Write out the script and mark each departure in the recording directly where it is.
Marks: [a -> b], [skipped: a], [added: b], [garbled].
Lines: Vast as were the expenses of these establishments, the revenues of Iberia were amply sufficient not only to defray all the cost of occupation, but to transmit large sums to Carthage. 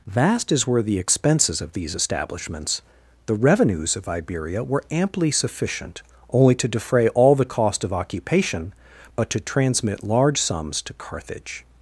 Vast as were the expenses of these establishments, the revenues of Iberia were amply sufficient [skipped: not] only to defray all the cost of occupation, but to transmit large sums to Carthage.